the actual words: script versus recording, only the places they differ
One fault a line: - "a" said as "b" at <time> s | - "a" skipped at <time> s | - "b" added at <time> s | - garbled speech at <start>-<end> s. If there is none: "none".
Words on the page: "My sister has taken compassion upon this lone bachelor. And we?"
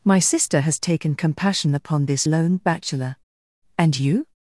- "we" said as "you" at 4.0 s